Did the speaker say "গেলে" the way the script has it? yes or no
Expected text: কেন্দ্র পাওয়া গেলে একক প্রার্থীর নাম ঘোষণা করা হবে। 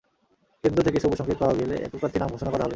yes